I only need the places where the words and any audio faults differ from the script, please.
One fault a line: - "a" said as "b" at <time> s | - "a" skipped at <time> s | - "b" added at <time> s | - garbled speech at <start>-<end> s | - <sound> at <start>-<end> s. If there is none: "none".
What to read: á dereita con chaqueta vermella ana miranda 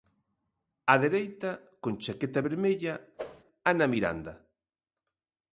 - whoosh at 3.2-3.4 s